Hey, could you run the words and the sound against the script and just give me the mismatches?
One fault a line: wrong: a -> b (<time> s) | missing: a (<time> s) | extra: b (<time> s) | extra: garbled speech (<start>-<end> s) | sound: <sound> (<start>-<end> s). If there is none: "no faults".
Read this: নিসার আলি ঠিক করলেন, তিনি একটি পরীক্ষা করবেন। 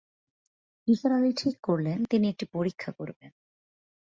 no faults